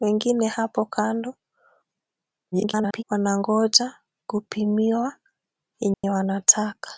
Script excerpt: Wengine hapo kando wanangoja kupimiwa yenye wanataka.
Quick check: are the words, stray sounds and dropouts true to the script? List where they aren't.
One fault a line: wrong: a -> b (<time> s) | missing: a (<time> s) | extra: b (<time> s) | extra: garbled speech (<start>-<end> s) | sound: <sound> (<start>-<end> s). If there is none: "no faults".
extra: garbled speech (2.5-3.0 s)
sound: dropout (5.9-6.0 s)